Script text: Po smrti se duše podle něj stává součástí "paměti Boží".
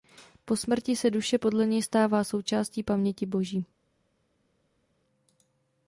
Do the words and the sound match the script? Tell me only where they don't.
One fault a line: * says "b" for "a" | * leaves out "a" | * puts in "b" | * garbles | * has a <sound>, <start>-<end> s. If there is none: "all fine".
all fine